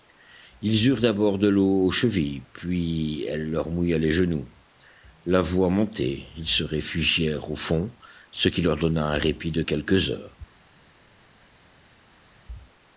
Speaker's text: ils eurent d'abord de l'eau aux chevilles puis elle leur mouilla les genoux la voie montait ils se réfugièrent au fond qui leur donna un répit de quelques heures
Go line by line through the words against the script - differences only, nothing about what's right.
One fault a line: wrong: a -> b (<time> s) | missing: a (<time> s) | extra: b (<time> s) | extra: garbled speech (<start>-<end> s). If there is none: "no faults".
extra: ce (8.3 s)